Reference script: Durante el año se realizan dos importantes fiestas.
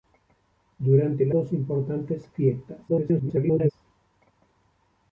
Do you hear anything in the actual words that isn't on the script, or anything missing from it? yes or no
yes